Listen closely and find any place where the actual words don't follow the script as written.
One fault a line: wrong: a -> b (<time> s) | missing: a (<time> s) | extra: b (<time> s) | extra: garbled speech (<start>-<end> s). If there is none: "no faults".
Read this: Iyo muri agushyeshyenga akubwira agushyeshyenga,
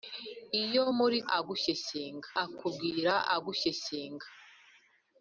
no faults